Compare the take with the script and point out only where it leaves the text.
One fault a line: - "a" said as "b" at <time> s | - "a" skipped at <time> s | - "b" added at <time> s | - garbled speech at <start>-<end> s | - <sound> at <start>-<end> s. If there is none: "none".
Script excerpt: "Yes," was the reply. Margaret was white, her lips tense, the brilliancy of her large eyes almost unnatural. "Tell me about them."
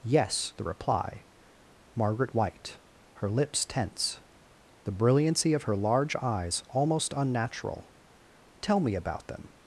- "was" skipped at 0.5 s
- "was" skipped at 2.3 s